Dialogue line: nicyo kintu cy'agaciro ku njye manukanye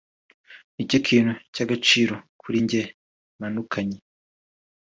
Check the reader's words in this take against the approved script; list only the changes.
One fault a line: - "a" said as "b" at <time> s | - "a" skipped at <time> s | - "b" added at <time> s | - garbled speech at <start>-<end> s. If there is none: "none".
- "ku" said as "kuri" at 2.4 s